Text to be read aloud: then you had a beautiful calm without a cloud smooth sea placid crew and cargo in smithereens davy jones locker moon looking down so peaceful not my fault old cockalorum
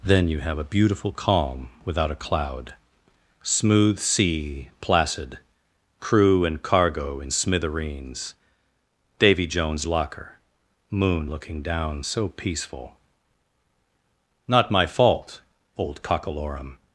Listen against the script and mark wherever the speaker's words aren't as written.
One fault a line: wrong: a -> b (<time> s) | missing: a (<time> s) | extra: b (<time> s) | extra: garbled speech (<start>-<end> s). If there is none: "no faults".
wrong: had -> have (0.4 s)